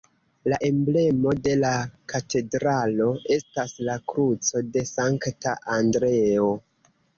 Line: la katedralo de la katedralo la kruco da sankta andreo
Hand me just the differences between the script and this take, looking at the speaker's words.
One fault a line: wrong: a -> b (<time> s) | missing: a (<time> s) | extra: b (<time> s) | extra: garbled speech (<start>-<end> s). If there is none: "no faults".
wrong: katedralo -> emblemo (0.7 s)
extra: estas (3.4 s)
wrong: da -> de (4.8 s)